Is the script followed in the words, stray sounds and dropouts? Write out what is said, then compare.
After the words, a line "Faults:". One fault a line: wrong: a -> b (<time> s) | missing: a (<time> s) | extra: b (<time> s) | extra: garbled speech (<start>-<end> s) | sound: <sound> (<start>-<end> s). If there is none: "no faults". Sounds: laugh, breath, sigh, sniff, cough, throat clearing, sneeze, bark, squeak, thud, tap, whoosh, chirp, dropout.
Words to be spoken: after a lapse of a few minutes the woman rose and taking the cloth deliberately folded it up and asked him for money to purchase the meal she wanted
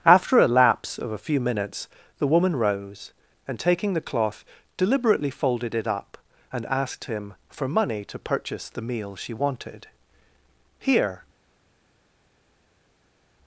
after a lapse of a few minutes the woman rose and taking the cloth deliberately folded it up and asked him for money to purchase the meal she wanted here
Faults:
extra: here (10.8 s)